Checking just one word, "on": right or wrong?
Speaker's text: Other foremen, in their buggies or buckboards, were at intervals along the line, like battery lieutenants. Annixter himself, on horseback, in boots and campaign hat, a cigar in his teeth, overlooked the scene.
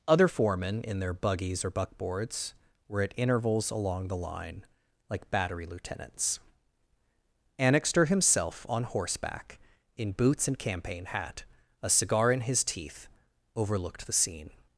right